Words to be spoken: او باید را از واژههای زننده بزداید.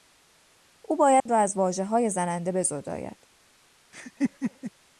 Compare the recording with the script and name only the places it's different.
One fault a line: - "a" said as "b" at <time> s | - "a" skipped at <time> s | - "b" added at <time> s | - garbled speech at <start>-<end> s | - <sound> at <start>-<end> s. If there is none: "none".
- dropout at 1.2-1.3 s
- laugh at 3.9-4.7 s